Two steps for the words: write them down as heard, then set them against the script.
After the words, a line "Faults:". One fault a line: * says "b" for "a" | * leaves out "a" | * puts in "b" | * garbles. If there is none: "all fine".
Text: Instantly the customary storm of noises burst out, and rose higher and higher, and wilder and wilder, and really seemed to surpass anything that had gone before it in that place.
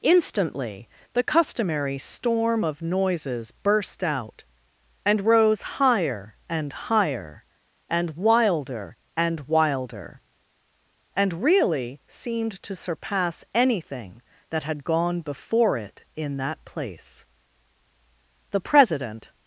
Instantly the customary storm of noises burst out, and rose higher and higher, and wilder and wilder, and really seemed to surpass anything that had gone before it in that place. The President
Faults:
* puts in "The President"